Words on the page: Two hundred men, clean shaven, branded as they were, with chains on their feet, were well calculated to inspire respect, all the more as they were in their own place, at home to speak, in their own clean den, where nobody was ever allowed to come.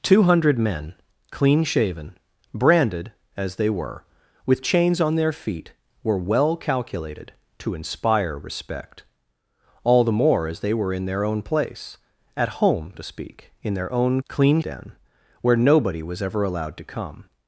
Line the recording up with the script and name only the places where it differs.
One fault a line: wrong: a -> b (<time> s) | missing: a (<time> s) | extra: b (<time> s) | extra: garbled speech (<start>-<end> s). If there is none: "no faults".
no faults